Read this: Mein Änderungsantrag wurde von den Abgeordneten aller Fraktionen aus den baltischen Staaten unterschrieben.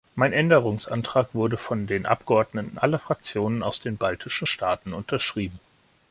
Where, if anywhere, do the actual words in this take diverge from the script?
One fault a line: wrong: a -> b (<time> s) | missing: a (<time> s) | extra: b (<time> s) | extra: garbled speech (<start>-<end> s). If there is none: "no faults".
no faults